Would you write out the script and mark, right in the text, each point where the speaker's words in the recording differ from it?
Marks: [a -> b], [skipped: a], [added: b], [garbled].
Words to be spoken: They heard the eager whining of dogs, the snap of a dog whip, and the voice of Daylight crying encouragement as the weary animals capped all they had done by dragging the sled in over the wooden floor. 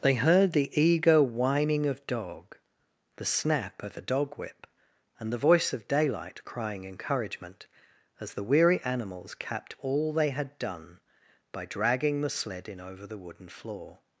They heard the eager whining of [dogs, -> dog] the snap of a dog whip, and the voice of Daylight crying encouragement as the weary animals capped all they had done by dragging the sled in over the wooden floor.